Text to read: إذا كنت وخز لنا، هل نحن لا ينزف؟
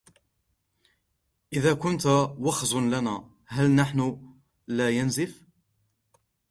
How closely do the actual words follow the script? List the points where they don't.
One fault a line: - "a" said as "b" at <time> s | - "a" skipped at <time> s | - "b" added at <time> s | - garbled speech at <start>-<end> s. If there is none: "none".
none